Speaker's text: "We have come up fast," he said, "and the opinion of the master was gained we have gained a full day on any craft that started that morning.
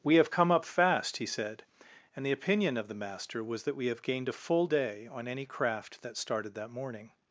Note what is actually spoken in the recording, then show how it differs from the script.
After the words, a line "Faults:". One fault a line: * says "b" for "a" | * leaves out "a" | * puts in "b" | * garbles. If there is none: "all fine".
"We have come up fast," he said, "and the opinion of the master was that we have gained a full day on any craft that started that morning.
Faults:
* says "that" for "gained"